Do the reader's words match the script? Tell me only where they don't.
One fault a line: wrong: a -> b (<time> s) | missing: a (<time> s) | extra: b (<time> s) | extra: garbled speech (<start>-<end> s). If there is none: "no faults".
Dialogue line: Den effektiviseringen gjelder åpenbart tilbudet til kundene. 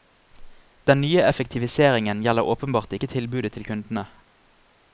extra: nye (1.0 s)
extra: ikke (3.0 s)